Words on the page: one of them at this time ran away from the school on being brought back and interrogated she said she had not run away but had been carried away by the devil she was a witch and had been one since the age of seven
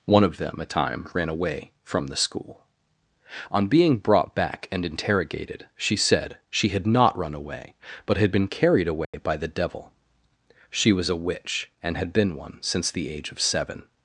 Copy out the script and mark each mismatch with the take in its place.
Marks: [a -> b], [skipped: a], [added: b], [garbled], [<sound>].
one of them at [skipped: this] time ran away from the school on being brought back and interrogated she said she had not run away but had been carried away [dropout] by the devil she was a witch and had been one since the age of seven